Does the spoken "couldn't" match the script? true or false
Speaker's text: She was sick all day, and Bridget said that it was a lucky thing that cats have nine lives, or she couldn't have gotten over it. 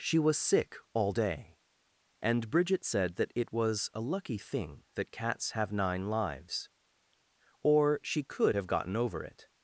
false